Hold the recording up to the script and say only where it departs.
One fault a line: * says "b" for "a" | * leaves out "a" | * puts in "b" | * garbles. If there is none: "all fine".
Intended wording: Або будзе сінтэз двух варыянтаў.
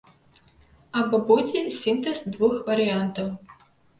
all fine